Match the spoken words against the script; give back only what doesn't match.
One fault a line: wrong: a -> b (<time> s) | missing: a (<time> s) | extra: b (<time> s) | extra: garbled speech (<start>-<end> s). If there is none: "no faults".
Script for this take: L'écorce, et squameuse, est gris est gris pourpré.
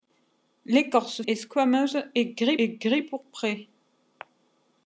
no faults